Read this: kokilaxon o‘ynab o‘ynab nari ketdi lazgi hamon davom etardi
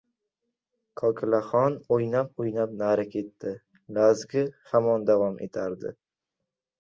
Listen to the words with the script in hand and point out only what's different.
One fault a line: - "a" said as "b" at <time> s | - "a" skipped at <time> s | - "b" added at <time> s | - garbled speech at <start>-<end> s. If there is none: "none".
none